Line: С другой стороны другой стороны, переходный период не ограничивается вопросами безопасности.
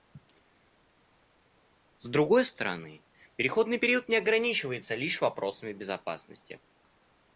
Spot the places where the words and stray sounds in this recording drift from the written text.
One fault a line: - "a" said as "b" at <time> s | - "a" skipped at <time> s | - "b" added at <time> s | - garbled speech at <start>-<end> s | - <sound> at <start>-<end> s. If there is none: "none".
- "другой стороны" skipped at 3.0 s
- "лишь" added at 5.0 s